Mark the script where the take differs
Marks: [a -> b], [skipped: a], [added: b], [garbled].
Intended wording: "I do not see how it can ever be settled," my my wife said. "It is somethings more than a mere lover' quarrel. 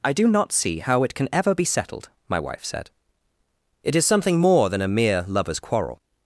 "I do not see how it can ever be settled," my [skipped: my] wife said. "It is [somethings -> something] more than a mere [lover' -> lovers] quarrel.